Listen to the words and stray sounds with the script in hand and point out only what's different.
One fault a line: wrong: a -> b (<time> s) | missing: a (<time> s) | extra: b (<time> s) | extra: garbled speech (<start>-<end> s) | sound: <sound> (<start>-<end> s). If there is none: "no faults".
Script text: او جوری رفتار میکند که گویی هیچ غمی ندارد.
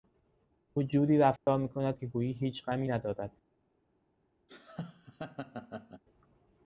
sound: dropout (1.4-1.5 s)
sound: laugh (4.5-6.0 s)